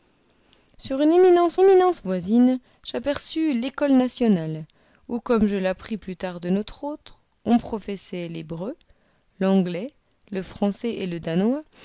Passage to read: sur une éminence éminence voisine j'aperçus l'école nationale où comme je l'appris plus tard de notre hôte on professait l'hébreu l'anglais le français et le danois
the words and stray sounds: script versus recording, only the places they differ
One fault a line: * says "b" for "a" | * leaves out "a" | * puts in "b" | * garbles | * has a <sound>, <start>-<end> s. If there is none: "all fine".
all fine